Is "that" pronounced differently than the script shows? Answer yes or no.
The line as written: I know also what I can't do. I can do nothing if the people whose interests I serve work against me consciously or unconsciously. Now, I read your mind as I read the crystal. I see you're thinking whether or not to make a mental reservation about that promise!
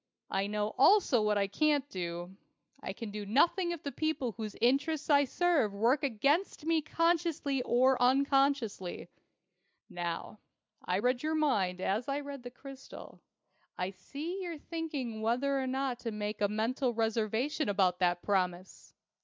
no